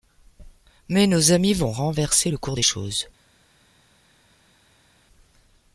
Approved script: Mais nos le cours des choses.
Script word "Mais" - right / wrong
right